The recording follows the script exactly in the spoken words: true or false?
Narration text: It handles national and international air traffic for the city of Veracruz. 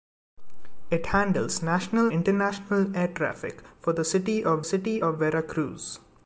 false